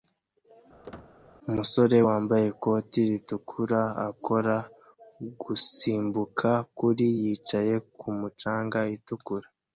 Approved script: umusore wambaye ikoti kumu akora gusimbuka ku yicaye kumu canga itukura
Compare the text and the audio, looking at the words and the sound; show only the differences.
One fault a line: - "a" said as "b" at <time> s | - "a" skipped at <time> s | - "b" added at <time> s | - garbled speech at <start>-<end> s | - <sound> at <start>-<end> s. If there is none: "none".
- squeak at 0.8-1.1 s
- "kumu" said as "ritukura" at 3.1 s
- "ku" said as "kuri" at 6.8 s